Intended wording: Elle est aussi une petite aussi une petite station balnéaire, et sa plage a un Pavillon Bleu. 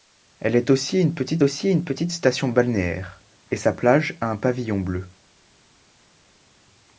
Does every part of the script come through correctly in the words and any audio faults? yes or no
yes